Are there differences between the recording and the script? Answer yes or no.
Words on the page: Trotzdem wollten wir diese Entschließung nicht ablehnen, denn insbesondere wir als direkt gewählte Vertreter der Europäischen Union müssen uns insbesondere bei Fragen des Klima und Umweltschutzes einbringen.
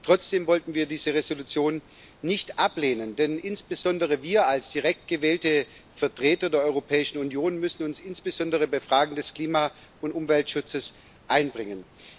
no